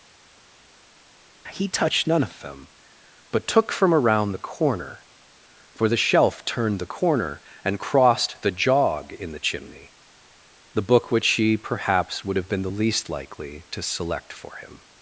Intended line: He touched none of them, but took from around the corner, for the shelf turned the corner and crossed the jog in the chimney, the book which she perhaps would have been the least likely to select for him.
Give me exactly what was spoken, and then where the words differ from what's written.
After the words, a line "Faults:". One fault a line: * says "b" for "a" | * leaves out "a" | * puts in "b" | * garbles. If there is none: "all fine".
He touched none of them, but took from around the corner, for the shelf turned the corner and crossed the jog in the chimney, the book which she perhaps would have been the least likely to select for him.
Faults:
all fine